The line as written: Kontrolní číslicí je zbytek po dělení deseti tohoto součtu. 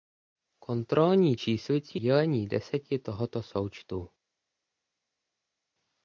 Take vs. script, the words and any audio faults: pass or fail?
fail